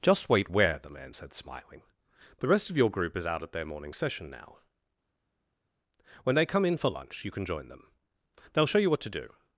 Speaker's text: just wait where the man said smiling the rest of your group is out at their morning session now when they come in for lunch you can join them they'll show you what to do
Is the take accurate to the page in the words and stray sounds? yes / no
yes